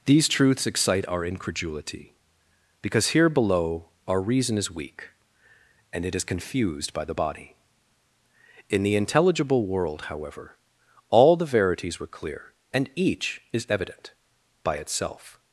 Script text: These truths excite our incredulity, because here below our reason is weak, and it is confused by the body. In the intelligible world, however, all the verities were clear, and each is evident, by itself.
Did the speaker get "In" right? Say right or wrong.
right